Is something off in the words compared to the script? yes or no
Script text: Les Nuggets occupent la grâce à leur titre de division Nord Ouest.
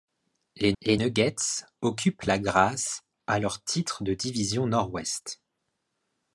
yes